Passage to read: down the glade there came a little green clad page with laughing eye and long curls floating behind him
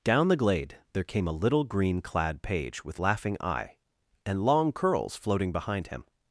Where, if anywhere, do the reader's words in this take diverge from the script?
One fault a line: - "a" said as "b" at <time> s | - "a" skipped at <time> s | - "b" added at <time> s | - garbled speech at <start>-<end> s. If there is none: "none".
none